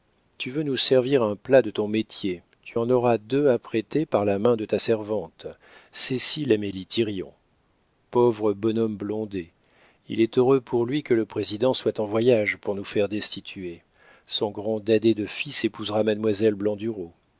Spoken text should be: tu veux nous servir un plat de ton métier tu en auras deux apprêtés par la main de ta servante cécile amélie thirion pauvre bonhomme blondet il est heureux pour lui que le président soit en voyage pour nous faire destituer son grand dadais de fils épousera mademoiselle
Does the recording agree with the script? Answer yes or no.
yes